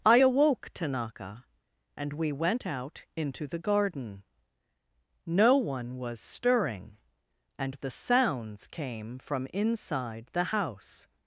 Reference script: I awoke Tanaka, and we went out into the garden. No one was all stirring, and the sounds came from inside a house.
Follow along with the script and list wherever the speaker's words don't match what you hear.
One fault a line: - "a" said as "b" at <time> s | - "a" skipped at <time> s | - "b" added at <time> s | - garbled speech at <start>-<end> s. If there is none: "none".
- "all" skipped at 6.2 s
- "a" said as "the" at 10.3 s